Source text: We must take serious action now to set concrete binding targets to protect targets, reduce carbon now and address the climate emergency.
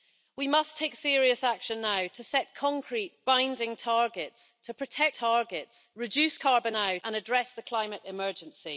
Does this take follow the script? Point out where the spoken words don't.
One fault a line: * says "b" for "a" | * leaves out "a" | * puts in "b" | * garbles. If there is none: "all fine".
all fine